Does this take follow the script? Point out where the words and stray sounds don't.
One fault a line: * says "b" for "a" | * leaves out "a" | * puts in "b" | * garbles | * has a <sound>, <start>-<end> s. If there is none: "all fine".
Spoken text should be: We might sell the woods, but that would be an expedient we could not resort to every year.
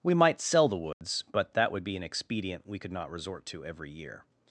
* has a dropout, 0.9-1.0 s